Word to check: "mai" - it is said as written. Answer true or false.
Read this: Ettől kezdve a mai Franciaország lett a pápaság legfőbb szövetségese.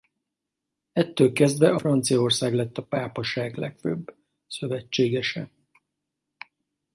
false